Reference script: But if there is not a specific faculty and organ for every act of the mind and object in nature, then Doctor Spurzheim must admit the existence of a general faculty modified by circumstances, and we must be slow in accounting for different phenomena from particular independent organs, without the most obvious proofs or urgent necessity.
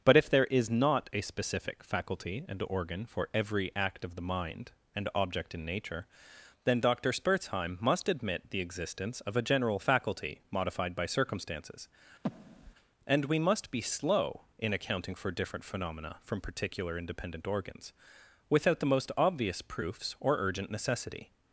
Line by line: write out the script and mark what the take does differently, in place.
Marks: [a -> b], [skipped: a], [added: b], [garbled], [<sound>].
But if there is not a specific faculty and organ for every act of the mind and object in nature, then Doctor Spurzheim must admit the existence of a general faculty modified by circumstances, [breath] and we must be slow in accounting for different phenomena from particular independent organs, without the most obvious proofs or urgent necessity.